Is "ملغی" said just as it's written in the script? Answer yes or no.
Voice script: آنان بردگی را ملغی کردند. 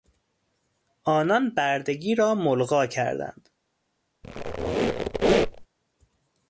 yes